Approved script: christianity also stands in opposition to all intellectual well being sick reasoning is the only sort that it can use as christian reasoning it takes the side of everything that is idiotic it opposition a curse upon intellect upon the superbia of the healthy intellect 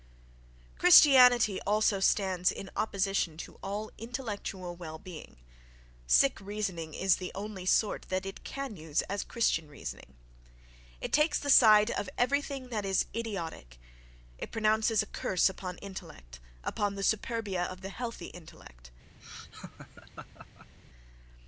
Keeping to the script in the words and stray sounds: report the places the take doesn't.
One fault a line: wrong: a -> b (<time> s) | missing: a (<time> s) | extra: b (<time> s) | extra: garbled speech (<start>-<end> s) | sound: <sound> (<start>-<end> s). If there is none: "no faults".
wrong: opposition -> pronounces (14.5 s)
sound: laugh (19.2-20.7 s)